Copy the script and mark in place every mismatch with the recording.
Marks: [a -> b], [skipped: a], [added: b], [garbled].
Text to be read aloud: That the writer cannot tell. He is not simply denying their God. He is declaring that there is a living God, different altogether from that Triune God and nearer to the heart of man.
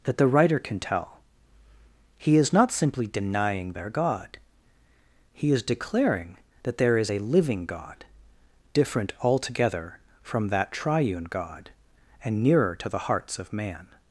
That the writer [cannot -> can] tell. He is not simply denying their God. He is declaring that there is a living God, different altogether from that Triune God and nearer to the [heart -> hearts] of man.